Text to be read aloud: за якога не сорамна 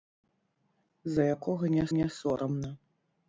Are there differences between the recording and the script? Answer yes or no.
yes